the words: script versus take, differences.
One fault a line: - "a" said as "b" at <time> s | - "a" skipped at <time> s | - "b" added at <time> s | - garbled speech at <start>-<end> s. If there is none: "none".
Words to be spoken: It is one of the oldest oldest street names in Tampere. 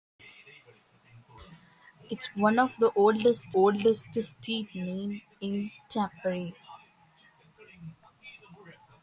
none